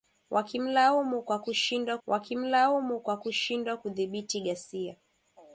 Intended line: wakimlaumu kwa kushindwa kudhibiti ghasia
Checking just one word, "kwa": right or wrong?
right